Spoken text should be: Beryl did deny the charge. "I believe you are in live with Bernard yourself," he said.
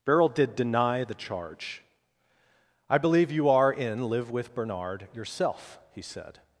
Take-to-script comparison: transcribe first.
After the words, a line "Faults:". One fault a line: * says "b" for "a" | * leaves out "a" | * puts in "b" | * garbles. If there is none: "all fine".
Beryl did deny the charge. "I believe you are in live with Bernard yourself," he said.
Faults:
all fine